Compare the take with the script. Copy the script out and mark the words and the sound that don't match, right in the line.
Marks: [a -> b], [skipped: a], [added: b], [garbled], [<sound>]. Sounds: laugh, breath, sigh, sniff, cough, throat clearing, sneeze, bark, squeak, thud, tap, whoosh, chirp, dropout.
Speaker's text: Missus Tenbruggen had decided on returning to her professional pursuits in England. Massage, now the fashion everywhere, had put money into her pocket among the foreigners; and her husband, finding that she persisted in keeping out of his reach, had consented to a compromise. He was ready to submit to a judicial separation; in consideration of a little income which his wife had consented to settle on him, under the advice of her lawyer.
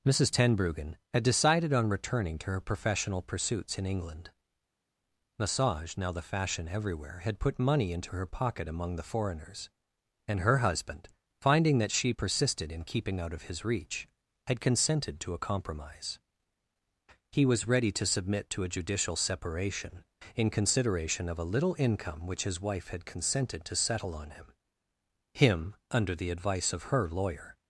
Missus Tenbruggen had decided on returning to her professional pursuits in England. Massage, now the fashion everywhere, had put money into her pocket among the foreigners; and her husband, finding that she persisted in keeping out of his reach, had consented to a compromise. He was ready to submit to a judicial separation; in consideration of a little income which his wife had consented to settle on him, [added: him] under the advice of her lawyer.